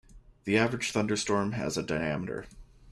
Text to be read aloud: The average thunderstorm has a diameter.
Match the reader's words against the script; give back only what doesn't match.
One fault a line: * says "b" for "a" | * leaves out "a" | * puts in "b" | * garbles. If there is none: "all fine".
all fine